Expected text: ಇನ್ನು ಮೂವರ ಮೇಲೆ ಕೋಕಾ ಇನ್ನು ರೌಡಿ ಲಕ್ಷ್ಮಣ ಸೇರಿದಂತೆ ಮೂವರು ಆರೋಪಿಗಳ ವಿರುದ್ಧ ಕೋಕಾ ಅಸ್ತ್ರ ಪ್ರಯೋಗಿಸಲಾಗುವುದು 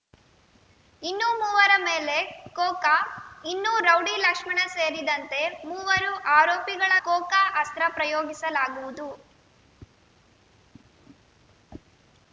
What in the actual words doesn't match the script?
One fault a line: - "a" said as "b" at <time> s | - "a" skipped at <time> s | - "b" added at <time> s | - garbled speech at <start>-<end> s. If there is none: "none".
- "ವಿರುದ್ಧ" skipped at 6.9 s